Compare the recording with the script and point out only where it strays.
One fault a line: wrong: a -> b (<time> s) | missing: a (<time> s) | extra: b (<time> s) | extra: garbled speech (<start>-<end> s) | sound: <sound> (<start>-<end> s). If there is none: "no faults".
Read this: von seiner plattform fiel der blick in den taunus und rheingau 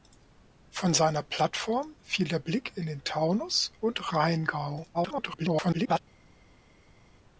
extra: garbled speech (4.9-6.0 s)